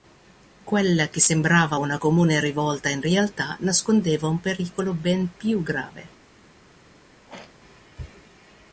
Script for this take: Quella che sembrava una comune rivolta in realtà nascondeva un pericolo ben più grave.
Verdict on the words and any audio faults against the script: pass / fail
fail